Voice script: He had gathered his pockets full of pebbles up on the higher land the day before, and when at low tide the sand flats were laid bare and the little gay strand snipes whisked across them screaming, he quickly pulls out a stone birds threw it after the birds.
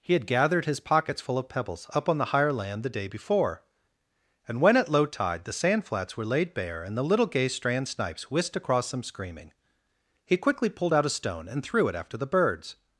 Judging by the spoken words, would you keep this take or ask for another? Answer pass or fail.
fail